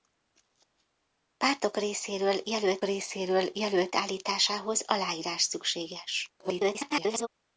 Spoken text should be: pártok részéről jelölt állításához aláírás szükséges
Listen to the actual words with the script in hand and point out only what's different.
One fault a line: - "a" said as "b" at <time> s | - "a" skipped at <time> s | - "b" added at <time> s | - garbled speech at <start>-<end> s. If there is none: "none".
- "részéről jelölt" added at 2.8 s
- garbled speech at 6.4-7.3 s